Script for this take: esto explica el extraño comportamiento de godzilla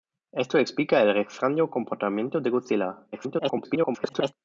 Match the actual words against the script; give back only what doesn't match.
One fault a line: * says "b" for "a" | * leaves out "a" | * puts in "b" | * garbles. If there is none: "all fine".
* garbles